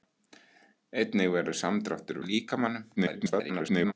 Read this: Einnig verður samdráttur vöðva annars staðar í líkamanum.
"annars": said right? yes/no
no